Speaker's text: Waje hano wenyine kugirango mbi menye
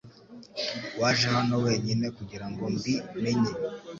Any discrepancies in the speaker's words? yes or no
no